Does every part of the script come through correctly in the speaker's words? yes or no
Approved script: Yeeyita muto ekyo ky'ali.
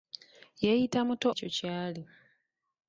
yes